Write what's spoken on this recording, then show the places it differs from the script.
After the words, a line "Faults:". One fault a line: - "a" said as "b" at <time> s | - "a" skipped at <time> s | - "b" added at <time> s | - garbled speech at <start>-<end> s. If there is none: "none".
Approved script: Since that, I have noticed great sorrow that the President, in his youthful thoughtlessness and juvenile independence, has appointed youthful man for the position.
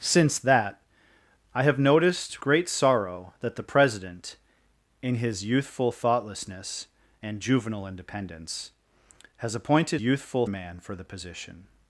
Since that, I have noticed great sorrow that the President, in his youthful thoughtlessness and juvenile independence, has appointed youthful man for the position.
Faults:
none